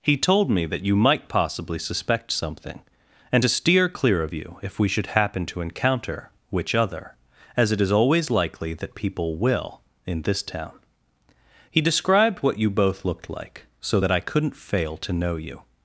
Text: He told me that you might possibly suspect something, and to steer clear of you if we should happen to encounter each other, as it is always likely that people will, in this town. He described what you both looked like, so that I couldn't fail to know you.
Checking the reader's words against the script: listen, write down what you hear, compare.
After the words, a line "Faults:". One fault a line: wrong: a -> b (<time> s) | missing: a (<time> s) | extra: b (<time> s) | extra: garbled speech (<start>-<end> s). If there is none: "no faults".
He told me that you might possibly suspect something, and to steer clear of you if we should happen to encounter which other, as it is always likely that people will, in this town. He described what you both looked like, so that I couldn't fail to know you.
Faults:
wrong: each -> which (6.5 s)